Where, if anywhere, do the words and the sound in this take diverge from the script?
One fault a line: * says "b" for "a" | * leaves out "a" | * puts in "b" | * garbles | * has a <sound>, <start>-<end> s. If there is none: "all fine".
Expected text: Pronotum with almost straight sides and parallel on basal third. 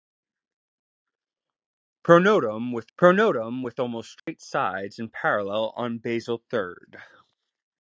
* puts in "pronotum with"
* has a dropout, 4.2-4.3 s